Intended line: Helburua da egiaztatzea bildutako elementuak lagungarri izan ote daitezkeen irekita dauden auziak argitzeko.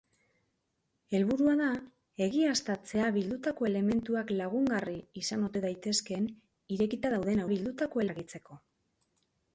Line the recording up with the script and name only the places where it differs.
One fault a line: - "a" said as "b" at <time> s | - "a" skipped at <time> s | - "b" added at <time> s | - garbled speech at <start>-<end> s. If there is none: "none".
- "auziak" said as "bildutako" at 7.5 s